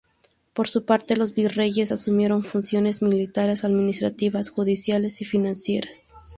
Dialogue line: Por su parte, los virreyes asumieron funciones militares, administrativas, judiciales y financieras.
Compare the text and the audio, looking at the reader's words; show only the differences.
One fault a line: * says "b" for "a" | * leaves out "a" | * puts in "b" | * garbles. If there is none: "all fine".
all fine